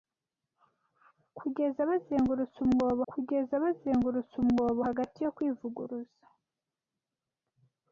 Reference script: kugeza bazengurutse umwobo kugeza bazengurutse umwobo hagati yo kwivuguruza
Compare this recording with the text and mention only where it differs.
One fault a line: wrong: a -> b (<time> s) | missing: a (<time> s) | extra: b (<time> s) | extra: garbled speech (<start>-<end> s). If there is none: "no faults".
no faults